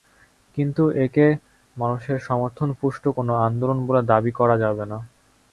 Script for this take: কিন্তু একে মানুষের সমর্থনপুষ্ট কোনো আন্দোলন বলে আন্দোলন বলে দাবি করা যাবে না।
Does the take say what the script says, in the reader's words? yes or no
no